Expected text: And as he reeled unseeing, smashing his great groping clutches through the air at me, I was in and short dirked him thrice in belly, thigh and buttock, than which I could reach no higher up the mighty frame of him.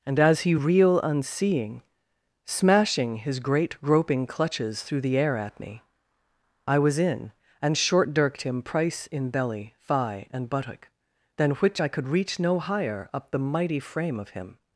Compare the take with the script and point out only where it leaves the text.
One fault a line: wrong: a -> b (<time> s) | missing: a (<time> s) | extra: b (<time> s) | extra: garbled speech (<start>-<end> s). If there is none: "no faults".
wrong: reeled -> reel (0.5 s)
wrong: thrice -> price (8.6 s)